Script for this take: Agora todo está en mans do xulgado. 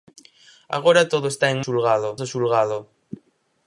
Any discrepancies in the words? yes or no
yes